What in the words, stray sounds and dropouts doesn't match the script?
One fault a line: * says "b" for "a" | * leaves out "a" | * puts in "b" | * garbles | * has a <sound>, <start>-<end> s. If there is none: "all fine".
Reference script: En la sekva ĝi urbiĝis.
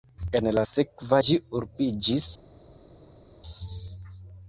all fine